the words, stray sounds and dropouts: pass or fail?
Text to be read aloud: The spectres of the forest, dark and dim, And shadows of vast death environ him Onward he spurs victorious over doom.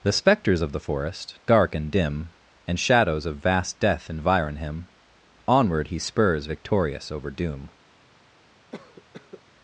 fail